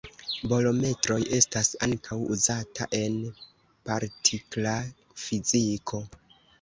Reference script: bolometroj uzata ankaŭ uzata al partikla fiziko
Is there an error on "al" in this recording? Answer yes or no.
yes